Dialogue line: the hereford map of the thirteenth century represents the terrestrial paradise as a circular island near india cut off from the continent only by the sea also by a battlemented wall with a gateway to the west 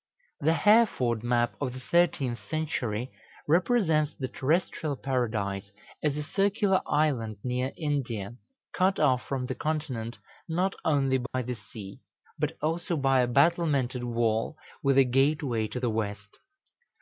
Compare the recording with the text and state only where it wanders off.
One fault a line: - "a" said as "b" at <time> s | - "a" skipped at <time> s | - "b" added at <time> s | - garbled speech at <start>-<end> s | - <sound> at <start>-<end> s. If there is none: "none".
- "not" added at 10.5 s
- dropout at 11.3-11.3 s
- "but" added at 12.4 s